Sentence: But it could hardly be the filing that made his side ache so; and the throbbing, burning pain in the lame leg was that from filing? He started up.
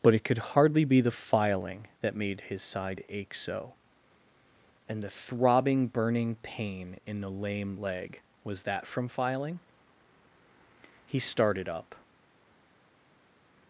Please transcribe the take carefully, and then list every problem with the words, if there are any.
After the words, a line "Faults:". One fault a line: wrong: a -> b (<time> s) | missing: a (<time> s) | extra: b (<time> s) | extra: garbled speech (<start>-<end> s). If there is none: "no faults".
But it could hardly be the filing that made his side ache so; and the throbbing, burning pain in the lame leg was that from filing? He started up.
Faults:
no faults